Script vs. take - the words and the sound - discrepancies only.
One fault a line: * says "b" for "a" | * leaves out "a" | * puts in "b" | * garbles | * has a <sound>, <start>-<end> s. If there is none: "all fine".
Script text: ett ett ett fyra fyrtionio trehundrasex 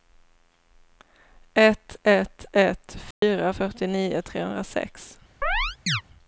* has a dropout, 3.1-3.2 s
* has a chirp, 5.4-6.0 s